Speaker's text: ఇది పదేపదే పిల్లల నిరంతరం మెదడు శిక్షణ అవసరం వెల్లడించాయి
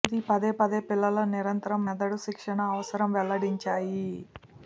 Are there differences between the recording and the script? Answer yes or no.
no